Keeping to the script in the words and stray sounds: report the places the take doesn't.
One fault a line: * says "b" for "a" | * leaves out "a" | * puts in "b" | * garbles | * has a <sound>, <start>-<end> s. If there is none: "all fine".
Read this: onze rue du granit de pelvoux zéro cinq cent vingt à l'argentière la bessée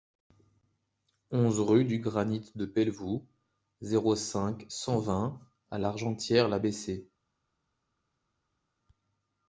all fine